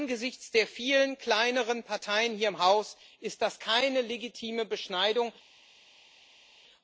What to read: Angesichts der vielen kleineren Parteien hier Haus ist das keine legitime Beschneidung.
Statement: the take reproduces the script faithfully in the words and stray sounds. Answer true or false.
false